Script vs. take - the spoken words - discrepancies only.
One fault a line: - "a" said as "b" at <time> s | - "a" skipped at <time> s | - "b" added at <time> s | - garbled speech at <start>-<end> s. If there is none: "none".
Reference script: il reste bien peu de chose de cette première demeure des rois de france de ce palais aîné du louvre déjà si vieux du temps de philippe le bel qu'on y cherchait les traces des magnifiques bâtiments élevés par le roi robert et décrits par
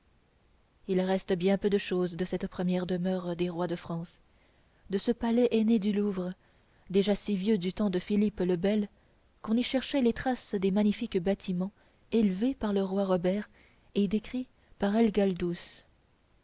none